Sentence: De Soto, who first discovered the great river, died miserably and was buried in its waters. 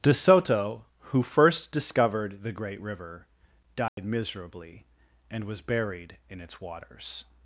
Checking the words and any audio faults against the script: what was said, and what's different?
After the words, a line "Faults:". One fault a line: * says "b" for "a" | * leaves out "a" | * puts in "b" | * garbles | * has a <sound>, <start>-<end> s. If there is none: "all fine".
De Soto, who first discovered the great river, died miserably and was buried in its waters.
Faults:
* has a dropout, 3.9-4.0 s